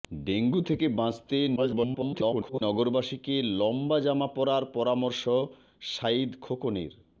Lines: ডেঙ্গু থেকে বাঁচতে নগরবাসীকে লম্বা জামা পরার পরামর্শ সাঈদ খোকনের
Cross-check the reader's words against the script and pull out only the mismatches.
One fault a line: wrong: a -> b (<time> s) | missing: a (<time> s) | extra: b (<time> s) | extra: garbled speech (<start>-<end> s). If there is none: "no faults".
extra: garbled speech (1.6-2.6 s)